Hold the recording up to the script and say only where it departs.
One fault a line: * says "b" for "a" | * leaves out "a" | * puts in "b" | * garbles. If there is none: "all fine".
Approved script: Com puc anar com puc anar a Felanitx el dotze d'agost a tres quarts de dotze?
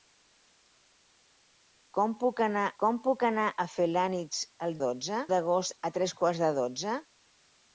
all fine